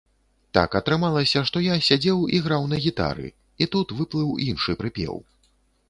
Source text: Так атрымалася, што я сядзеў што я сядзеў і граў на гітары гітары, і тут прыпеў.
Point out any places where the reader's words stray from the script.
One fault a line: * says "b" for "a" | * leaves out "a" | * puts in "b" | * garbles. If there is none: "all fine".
* leaves out "што я сядзеў"
* leaves out "гітары"
* puts in "выплыў іншы"